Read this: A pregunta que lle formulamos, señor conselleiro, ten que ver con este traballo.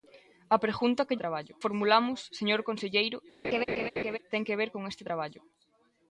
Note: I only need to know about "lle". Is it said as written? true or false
false